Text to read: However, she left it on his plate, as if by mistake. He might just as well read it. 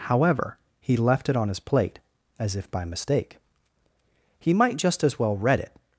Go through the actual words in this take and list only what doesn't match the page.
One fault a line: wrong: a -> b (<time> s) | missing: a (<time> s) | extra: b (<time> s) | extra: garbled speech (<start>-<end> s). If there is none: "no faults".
wrong: she -> he (0.8 s)